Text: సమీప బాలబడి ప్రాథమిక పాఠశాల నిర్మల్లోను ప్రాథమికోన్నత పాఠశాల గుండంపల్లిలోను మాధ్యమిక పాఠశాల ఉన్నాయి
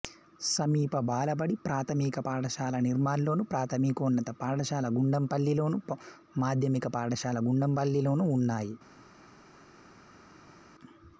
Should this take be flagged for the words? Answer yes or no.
yes